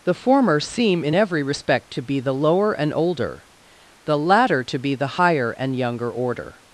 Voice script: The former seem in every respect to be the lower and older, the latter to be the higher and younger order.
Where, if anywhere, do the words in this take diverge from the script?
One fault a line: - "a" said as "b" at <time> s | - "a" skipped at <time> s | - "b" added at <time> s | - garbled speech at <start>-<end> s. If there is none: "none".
none